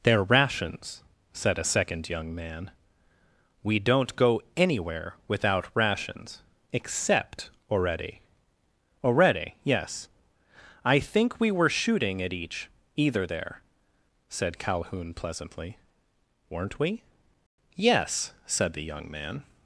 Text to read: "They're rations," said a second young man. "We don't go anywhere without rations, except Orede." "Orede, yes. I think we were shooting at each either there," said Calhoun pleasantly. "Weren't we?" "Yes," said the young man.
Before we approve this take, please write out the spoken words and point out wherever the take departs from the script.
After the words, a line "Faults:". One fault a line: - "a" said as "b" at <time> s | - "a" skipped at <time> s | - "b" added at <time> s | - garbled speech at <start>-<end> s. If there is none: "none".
"They're rations," said a second young man. "We don't go anywhere without rations, except Orede." "Orede, yes. I think we were shooting at each either there," said Calhoun pleasantly. "Weren't we?" "Yes," said the young man.
Faults:
none